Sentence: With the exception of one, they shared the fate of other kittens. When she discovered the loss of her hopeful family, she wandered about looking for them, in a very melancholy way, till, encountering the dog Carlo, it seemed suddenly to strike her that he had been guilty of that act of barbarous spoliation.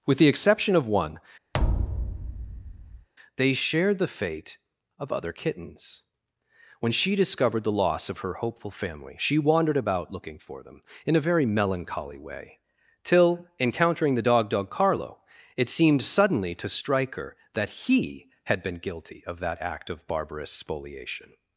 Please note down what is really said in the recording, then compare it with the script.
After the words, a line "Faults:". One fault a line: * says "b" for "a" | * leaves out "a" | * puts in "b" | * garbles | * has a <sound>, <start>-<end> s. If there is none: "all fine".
With the exception of one, they shared the fate of other kittens. When she discovered the loss of her hopeful family, she wandered about looking for them, in a very melancholy way, till, encountering the dog dog Carlo, it seemed suddenly to strike her that he had been guilty of that act of barbarous spoliation.
Faults:
* has a thud, 1.5-3.1 s
* puts in "dog"